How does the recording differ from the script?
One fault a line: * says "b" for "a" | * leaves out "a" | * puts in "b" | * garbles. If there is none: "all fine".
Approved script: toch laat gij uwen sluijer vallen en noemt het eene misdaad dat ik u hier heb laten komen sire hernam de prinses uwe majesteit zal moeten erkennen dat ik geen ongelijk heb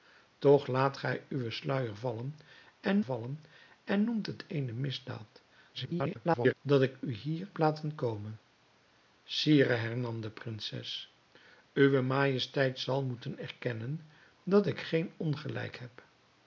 * puts in "vallen en"
* garbles
* leaves out "heb"